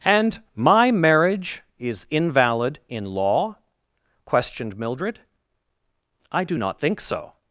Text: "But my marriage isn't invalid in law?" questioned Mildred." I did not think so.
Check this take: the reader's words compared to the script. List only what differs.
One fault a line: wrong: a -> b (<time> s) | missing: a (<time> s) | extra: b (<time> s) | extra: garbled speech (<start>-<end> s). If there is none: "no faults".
wrong: But -> And (0.1 s)
wrong: isn't -> is (1.8 s)
wrong: did -> do (6.4 s)